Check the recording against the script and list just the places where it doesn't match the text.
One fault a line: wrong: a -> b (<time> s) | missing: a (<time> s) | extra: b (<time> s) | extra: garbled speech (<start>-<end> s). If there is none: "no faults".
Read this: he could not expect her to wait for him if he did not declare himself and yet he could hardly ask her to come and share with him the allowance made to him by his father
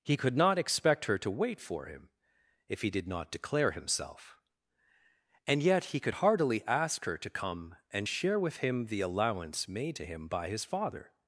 wrong: hardly -> heartily (6.1 s)